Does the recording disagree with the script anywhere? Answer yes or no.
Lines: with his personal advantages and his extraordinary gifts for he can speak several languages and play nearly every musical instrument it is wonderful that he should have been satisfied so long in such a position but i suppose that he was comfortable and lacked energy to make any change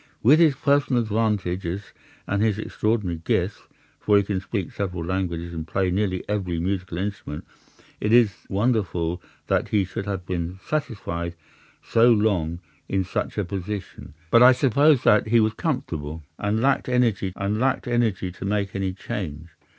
yes